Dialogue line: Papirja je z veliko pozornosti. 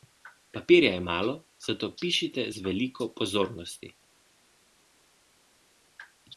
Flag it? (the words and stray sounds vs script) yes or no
yes